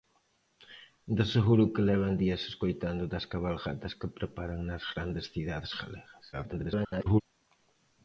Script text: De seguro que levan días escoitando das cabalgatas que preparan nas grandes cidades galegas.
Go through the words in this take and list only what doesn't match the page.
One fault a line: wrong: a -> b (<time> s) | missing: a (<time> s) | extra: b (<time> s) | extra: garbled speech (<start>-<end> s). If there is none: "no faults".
extra: garbled speech (6.3-7.2 s)